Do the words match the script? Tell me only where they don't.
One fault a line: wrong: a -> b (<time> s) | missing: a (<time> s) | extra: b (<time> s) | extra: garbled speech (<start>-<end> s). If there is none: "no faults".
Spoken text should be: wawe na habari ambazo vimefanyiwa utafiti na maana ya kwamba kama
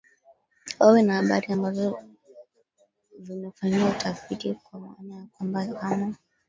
wrong: na -> kwa (4.5 s)